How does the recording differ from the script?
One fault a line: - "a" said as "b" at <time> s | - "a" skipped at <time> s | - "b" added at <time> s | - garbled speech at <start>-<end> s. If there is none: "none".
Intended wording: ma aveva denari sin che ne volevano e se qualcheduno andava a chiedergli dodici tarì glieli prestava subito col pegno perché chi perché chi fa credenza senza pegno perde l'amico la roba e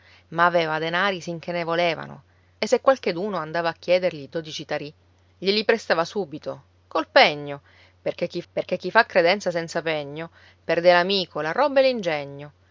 none